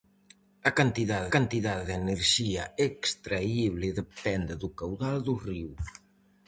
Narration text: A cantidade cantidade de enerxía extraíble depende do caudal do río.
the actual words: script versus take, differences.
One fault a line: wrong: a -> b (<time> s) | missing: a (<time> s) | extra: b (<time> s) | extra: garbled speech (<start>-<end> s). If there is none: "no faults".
no faults